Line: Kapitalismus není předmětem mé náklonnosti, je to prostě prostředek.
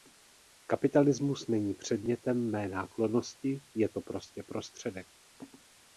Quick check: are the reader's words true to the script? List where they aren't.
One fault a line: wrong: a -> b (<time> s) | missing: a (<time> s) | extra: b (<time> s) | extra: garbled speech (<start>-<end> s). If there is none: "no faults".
no faults